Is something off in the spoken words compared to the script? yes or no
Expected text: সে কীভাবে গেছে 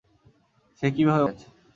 no